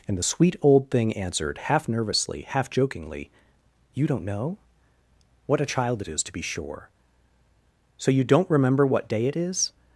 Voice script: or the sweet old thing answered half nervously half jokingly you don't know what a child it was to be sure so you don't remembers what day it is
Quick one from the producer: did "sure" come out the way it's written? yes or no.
yes